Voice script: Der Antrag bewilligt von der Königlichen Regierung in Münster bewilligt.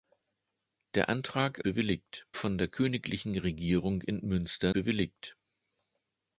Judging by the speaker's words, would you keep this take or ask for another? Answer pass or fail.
pass